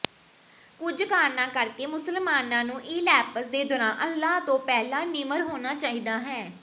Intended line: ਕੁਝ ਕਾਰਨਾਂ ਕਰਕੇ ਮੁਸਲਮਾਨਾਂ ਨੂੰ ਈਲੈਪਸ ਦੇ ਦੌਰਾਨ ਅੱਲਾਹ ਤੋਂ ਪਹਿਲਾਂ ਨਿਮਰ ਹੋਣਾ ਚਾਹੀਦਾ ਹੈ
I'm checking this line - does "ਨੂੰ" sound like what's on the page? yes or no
yes